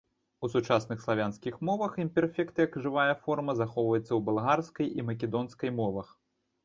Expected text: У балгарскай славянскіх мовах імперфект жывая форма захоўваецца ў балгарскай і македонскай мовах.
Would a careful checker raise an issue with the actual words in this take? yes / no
yes